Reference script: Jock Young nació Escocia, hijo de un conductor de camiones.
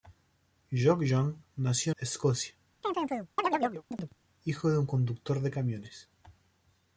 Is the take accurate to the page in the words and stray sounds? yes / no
no